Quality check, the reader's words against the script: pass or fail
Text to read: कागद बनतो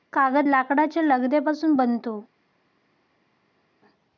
fail